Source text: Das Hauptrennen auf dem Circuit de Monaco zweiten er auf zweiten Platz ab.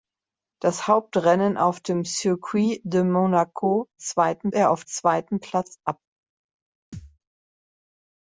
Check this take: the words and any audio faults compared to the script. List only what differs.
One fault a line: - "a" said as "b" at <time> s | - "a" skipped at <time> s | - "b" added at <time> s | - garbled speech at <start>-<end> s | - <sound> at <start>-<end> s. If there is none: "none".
- thud at 6.9-7.2 s